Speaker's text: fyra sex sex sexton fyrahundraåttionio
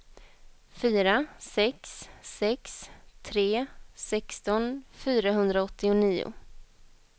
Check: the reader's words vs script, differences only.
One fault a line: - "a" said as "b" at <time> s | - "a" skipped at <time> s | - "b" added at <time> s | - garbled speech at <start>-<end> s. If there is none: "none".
- "tre" added at 3.2 s